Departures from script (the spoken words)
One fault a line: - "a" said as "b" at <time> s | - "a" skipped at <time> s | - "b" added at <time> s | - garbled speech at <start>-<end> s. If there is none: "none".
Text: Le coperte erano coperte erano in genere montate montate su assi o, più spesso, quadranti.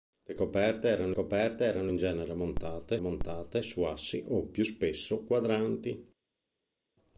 none